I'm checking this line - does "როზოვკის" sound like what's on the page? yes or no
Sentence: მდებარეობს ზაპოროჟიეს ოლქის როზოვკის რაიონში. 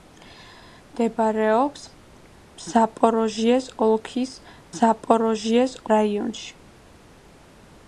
no